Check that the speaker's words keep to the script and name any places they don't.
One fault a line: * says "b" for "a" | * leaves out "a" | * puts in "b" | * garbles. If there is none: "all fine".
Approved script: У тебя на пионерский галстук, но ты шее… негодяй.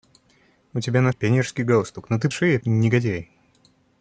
all fine